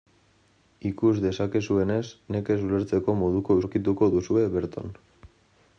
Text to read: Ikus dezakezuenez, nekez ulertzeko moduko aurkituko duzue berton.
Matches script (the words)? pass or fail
pass